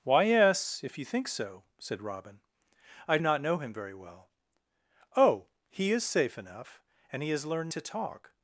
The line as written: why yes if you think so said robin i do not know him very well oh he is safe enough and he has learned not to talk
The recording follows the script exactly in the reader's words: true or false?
false